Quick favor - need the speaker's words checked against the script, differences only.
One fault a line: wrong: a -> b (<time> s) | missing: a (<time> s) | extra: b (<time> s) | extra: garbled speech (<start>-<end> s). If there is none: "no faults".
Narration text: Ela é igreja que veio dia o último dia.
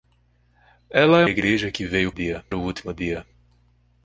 no faults